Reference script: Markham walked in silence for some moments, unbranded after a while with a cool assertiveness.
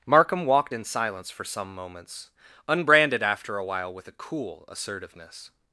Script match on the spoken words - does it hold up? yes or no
yes